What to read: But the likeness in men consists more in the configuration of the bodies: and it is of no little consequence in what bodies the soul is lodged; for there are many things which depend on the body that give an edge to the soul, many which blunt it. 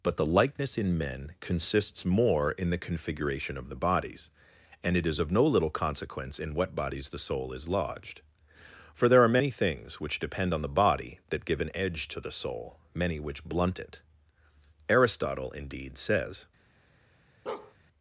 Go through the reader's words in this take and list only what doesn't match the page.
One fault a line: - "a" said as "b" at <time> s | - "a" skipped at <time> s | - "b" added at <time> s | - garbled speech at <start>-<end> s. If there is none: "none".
- "Aristotle indeed says" added at 14.9 s